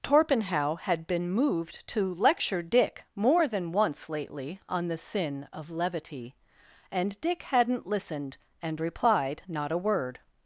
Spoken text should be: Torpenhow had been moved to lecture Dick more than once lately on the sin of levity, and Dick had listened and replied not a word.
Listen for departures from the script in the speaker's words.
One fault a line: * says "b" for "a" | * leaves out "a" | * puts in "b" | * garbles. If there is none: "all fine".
* says "hadn't" for "had"